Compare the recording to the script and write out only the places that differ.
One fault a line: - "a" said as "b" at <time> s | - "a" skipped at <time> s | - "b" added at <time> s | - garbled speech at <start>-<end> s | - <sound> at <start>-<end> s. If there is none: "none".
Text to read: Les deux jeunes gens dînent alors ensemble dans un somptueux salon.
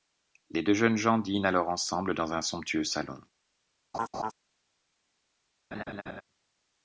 - laugh at 3.9-4.3 s
- laugh at 5.7-6.2 s